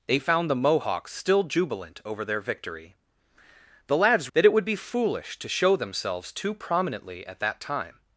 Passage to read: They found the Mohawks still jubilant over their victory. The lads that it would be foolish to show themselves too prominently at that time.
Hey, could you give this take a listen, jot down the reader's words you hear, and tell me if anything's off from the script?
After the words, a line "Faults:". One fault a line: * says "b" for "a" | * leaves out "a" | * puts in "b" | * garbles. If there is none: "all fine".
They found the Mohawks still jubilant over their victory. The lads that it would be foolish to show themselves too prominently at that time.
Faults:
all fine